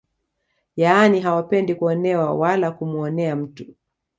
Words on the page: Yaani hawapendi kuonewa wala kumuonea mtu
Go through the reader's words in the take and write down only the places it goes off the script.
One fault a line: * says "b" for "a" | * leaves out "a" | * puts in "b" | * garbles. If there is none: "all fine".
all fine